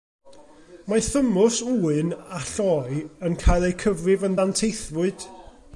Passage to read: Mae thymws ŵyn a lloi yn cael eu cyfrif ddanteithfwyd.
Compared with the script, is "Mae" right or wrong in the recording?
right